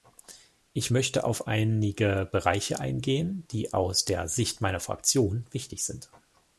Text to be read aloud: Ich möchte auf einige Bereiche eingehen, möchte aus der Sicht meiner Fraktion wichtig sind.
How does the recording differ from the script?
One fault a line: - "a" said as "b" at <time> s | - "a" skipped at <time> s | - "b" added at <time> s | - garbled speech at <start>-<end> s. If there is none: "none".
- "möchte" said as "die" at 3.5 s